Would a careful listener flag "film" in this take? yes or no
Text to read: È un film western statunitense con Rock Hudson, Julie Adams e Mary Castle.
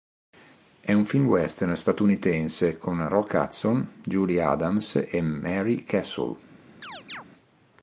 no